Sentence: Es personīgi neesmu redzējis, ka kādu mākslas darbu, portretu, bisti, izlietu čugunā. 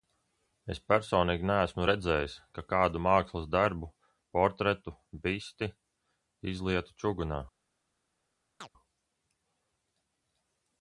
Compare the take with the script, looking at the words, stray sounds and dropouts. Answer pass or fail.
fail